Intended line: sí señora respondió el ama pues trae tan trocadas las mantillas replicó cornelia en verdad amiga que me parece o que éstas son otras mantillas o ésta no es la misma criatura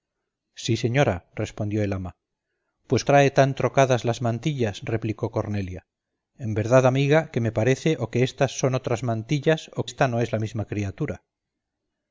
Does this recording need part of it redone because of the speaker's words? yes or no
no